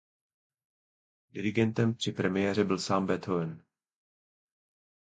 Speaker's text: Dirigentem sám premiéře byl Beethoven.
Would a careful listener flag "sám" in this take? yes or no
yes